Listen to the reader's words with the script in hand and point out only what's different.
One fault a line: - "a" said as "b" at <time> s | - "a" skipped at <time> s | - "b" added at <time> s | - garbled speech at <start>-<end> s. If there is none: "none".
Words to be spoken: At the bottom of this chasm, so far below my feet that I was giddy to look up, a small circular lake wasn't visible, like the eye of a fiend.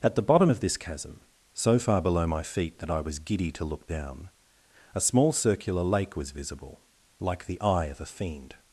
- "up" said as "down" at 3.9 s
- "wasn't" said as "was" at 6.1 s